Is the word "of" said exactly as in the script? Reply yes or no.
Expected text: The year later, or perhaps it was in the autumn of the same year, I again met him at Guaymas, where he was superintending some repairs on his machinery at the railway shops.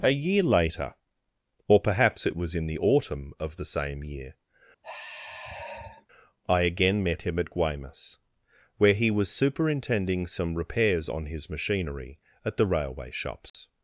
yes